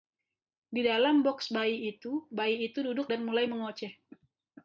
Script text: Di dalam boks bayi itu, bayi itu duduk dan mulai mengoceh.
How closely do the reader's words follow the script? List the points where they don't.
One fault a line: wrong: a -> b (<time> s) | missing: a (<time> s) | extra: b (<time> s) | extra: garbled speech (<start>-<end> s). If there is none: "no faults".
no faults